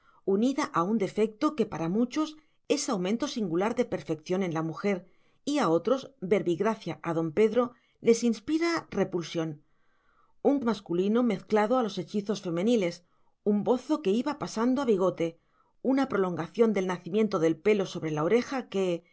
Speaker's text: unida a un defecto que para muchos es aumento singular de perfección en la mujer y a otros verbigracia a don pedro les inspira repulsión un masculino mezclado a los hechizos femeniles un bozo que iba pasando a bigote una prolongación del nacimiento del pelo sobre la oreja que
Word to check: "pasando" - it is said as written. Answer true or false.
true